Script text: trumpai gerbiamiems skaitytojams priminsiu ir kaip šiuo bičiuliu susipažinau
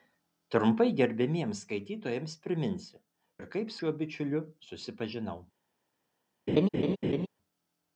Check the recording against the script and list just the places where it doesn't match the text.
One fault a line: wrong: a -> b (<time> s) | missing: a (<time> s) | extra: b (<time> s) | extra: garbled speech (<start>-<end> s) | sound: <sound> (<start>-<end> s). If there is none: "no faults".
sound: laugh (6.5-7.3 s)